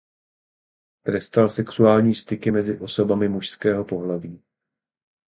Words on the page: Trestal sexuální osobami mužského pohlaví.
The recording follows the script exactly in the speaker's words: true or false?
false